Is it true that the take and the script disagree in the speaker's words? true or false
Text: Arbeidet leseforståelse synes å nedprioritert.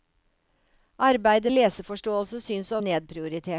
false